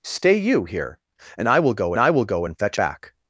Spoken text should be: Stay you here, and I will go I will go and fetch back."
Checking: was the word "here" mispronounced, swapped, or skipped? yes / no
no